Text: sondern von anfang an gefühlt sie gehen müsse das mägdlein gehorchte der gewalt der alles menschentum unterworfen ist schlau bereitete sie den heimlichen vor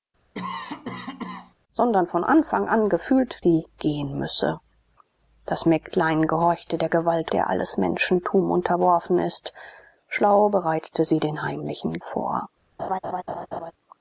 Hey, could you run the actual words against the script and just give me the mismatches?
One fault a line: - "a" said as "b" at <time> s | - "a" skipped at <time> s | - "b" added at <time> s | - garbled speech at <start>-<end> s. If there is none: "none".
none